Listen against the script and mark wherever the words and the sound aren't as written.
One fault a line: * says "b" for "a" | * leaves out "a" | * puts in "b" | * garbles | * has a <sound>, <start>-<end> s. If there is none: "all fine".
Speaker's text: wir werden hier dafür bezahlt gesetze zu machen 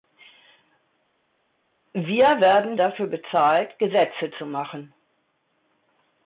* leaves out "hier"